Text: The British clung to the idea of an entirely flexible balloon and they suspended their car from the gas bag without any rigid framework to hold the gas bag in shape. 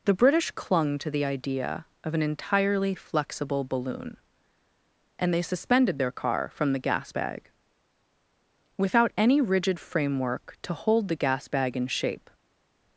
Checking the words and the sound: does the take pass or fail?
pass